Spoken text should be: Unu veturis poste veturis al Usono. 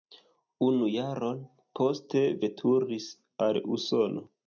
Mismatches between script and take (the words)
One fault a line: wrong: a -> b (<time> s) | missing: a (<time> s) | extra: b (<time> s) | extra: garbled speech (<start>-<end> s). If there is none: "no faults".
wrong: veturis -> jaron (0.9 s)